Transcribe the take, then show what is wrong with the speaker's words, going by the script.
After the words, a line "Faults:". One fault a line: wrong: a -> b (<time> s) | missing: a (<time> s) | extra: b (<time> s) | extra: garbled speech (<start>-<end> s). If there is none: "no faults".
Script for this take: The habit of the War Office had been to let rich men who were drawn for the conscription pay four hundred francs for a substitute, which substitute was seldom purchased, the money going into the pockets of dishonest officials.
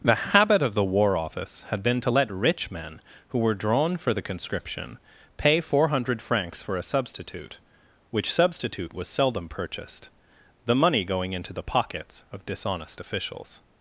The habit of the War Office had been to let rich men who were drawn for the conscription pay four hundred francs for a substitute, which substitute was seldom purchased, the money going into the pockets of dishonest officials.
Faults:
no faults